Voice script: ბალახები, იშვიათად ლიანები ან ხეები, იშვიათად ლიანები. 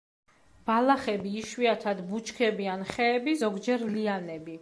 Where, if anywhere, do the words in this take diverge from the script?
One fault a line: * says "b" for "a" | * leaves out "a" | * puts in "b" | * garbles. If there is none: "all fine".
* says "ბუჩქები" for "ლიანები"
* says "ზოგჯერ" for "იშვიათად"